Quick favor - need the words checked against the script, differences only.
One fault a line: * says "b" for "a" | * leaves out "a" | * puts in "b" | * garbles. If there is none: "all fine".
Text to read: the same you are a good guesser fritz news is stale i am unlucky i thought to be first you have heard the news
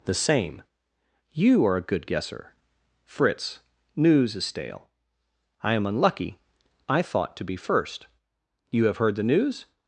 all fine